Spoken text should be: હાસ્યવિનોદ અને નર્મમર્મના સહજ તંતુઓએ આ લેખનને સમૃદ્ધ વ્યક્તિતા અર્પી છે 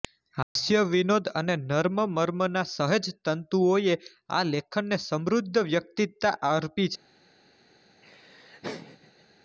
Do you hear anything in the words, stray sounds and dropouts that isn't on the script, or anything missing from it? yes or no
yes